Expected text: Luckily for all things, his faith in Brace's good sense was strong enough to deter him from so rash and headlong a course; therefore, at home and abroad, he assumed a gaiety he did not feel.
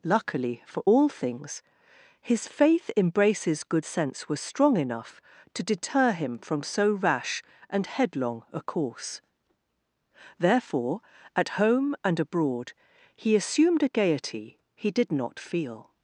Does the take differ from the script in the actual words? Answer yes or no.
no